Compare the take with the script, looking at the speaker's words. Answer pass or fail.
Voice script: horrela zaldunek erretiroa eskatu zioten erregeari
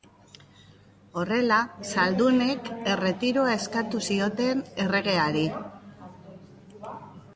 pass